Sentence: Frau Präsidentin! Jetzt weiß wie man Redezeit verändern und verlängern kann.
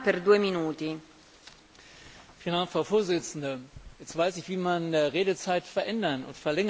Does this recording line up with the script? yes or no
no